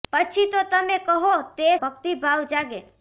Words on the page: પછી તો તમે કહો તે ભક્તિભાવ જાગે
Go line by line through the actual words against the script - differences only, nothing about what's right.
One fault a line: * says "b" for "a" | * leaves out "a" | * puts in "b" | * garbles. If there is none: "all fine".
all fine